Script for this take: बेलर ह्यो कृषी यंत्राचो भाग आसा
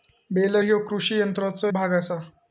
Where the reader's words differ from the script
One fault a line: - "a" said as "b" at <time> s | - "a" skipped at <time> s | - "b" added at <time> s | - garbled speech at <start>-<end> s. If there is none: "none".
none